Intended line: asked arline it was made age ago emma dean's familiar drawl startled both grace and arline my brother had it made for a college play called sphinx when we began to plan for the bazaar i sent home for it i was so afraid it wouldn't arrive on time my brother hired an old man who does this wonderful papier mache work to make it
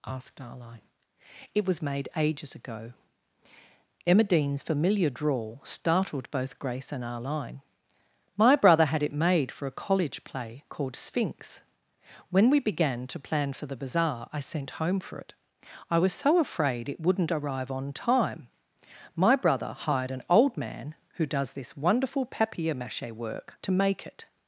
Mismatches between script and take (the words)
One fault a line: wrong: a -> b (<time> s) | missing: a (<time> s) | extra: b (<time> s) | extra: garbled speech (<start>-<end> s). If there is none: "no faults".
wrong: age -> ages (2.1 s)